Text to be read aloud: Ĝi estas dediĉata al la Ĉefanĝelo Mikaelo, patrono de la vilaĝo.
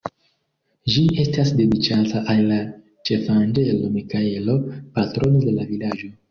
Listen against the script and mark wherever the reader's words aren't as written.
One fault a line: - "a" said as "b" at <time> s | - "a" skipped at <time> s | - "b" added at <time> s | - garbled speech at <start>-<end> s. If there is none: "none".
none